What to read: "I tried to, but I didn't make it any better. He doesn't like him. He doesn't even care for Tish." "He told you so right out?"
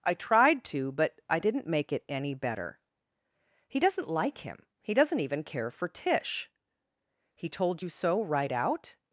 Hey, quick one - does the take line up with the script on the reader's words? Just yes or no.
yes